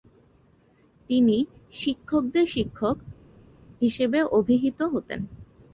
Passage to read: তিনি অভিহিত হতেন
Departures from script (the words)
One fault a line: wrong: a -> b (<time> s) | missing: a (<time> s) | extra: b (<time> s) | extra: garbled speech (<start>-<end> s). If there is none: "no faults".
extra: শিক্ষকদের শিক্ষক হিসেবে (1.7 s)